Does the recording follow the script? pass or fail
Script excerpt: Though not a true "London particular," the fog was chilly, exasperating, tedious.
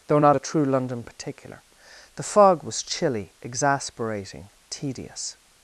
pass